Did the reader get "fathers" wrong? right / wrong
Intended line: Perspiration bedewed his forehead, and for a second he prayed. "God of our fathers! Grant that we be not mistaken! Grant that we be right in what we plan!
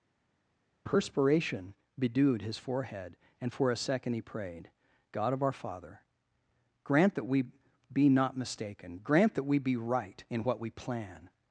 wrong